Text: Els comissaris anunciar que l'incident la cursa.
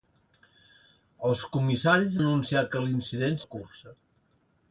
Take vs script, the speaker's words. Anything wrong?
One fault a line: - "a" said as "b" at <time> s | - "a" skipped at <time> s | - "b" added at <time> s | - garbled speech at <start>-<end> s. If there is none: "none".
none